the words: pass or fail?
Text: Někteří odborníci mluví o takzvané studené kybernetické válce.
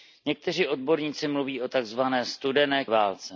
fail